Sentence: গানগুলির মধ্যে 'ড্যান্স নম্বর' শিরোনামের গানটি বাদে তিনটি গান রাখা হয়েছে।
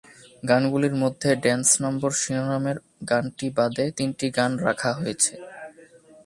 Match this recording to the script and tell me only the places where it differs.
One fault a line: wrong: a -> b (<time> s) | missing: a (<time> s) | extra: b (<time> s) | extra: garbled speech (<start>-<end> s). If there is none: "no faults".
no faults